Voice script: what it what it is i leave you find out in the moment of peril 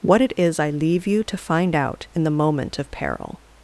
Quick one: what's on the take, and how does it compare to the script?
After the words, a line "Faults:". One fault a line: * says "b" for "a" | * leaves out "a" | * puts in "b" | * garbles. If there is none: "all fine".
what it is i leave you to find out in the moment of peril
Faults:
* leaves out "what it"
* puts in "to"